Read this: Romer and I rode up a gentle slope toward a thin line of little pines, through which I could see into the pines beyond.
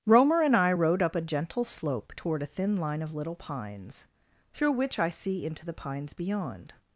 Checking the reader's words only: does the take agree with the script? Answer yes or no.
no